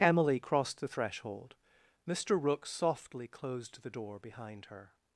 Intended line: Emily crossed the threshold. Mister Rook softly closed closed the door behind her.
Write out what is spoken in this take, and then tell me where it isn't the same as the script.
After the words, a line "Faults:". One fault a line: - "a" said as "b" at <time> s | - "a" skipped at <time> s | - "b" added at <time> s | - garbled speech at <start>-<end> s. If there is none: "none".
Emily crossed the threshold. Mister Rook softly closed the door behind her.
Faults:
- "closed" skipped at 3.8 s